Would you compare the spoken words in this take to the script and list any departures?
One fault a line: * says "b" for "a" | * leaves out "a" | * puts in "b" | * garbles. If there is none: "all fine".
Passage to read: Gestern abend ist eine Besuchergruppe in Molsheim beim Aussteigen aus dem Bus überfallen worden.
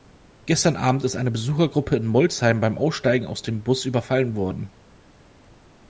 all fine